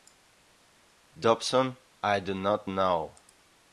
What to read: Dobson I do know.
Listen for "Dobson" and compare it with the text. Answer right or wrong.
right